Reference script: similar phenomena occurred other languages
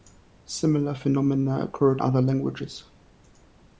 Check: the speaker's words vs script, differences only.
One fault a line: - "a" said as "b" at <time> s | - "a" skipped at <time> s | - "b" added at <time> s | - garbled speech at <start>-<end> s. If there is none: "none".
none